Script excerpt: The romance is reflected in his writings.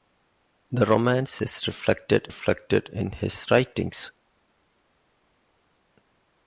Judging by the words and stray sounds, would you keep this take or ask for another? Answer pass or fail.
fail